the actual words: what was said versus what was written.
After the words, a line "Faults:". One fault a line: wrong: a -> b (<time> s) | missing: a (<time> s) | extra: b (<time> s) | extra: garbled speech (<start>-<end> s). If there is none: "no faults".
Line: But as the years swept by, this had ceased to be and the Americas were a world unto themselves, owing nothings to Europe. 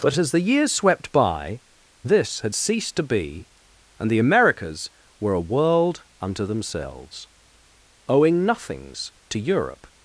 But as the years swept by, this had ceased to be and the Americas were a world unto themselves, owing nothings to Europe.
Faults:
no faults